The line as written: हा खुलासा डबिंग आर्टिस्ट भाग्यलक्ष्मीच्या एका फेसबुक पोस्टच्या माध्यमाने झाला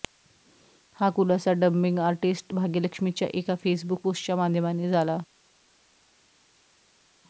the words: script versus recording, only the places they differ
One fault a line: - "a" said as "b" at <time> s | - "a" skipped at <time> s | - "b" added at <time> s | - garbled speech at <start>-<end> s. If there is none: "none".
none